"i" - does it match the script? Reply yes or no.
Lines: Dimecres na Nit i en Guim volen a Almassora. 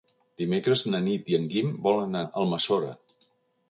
yes